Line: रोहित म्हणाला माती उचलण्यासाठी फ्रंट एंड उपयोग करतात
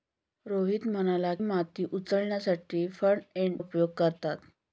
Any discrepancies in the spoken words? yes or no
no